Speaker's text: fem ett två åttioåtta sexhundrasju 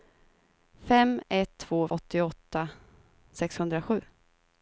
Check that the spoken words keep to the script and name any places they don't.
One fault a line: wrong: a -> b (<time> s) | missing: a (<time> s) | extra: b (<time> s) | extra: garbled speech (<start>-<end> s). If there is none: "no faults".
no faults